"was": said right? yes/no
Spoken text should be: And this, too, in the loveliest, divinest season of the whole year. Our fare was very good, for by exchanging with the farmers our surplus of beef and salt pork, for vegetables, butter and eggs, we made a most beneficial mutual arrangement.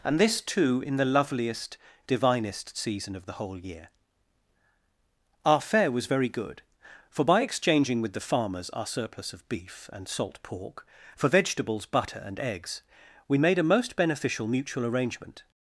yes